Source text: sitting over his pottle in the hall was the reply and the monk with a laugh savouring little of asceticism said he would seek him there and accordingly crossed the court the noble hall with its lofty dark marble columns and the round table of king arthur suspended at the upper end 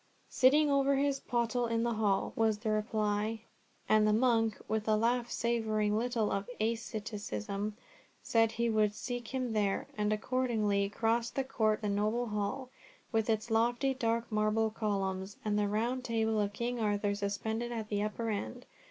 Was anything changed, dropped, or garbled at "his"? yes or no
no